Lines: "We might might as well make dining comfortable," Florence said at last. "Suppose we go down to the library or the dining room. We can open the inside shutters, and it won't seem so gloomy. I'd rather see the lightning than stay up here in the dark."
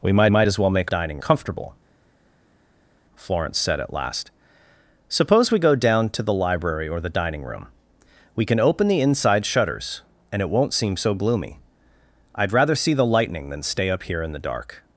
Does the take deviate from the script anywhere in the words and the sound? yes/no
no